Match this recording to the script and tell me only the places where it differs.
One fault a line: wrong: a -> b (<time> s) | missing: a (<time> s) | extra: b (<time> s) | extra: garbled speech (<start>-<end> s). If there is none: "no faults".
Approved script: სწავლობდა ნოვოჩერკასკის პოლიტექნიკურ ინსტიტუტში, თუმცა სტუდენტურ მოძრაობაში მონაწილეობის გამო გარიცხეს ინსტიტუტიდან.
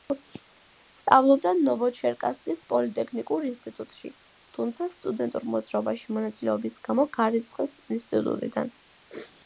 no faults